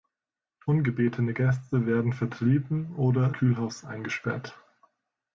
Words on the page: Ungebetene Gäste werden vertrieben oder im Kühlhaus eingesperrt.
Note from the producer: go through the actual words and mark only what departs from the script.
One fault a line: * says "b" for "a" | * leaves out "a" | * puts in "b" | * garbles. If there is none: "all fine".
* leaves out "im"